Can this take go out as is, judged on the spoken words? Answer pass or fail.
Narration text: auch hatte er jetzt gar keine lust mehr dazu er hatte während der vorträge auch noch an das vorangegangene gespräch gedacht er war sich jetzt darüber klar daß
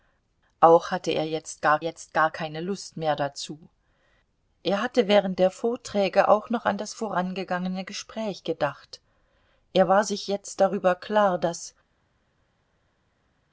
fail